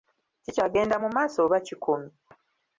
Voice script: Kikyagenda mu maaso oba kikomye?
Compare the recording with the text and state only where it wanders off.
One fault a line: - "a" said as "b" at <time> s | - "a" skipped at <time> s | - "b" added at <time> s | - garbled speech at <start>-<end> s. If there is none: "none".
none